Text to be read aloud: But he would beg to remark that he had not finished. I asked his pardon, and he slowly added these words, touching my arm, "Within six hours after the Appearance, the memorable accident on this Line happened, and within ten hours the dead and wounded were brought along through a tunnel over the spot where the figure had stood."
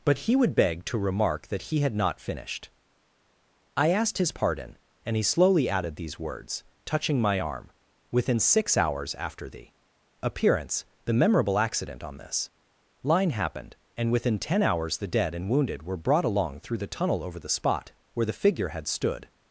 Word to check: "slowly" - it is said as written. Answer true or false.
true